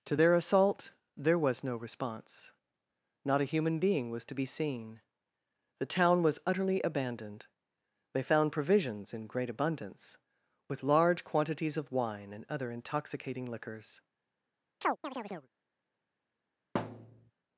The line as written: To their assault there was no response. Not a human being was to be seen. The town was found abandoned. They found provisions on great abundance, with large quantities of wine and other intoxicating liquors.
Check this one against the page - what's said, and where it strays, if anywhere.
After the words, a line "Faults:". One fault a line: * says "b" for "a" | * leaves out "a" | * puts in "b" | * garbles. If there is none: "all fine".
To their assault there was no response. Not a human being was to be seen. The town was utterly abandoned. They found provisions in great abundance, with large quantities of wine and other intoxicating liquors.
Faults:
* says "utterly" for "found"
* says "in" for "on"